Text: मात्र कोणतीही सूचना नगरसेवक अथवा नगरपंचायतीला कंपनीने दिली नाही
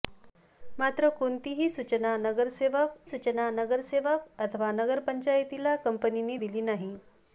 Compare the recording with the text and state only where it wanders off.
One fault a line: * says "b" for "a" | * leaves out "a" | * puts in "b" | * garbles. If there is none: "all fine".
* puts in "सूचना नगरसेवक"